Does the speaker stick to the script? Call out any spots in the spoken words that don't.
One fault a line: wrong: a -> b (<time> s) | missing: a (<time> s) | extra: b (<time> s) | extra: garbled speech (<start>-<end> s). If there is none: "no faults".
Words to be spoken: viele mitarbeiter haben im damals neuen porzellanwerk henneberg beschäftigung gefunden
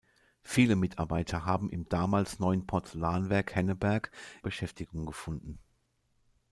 no faults